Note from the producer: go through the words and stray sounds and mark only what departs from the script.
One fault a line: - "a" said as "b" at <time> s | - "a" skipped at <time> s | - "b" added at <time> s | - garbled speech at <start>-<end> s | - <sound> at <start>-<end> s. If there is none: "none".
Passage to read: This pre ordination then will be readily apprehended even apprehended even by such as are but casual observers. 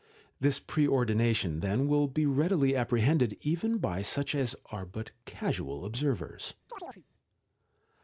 - "apprehended even" skipped at 3.8 s
- chirp at 6.7-7.0 s